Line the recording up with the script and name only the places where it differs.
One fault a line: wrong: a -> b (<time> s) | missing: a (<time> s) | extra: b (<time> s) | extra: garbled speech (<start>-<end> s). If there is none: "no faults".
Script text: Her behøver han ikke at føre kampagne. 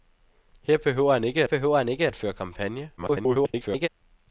extra: behøver han ikke (1.4 s)
extra: garbled speech (3.0-3.9 s)